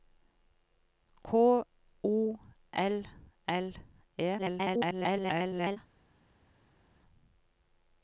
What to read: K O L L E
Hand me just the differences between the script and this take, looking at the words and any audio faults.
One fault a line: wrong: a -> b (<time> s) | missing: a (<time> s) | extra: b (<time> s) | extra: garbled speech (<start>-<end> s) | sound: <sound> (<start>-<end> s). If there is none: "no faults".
extra: garbled speech (4.4-5.8 s)